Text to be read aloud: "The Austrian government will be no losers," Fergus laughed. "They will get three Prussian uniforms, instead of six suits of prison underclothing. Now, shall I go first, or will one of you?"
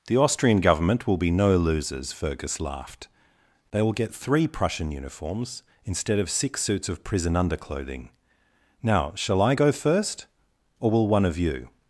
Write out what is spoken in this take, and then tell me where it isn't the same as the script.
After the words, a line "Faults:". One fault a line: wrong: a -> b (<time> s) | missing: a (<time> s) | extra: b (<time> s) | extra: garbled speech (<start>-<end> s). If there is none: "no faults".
"The Austrian government will be no losers," Fergus laughed. "They will get three Prussian uniforms, instead of six suits of prison underclothing. Now, shall I go first, or will one of you?"
Faults:
no faults